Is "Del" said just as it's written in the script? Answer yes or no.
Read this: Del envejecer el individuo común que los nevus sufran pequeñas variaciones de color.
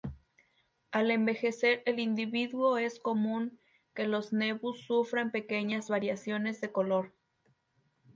no